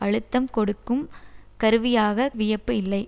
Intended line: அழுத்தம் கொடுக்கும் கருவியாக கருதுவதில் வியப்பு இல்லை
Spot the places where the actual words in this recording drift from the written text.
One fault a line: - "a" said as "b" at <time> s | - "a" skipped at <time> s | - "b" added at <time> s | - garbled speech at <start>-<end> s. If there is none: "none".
- "கருதுவதில்" skipped at 2.3 s